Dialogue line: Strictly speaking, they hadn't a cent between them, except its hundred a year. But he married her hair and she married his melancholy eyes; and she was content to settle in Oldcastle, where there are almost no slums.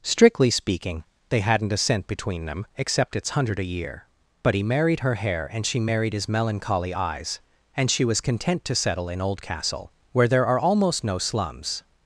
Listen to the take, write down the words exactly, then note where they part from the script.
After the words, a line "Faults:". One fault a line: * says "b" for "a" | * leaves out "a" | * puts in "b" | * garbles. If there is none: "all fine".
Strictly speaking, they hadn't a cent between them, except its hundred a year. But he married her hair and she married his melancholy eyes; and she was content to settle in Oldcastle, where there are almost no slums.
Faults:
all fine